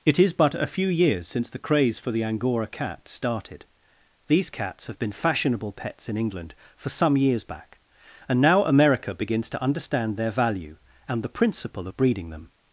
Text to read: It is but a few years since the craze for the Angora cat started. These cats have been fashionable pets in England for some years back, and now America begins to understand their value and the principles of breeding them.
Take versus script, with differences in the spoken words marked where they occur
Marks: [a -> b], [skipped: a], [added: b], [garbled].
It is but a few years since the craze for the Angora cat started. These cats have been fashionable pets in England for some years back, and now America begins to understand their value and the [principles -> principle] of breeding them.